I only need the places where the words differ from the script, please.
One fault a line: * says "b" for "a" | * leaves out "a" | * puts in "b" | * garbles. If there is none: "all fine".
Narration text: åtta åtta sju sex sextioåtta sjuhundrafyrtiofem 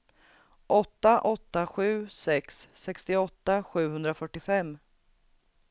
all fine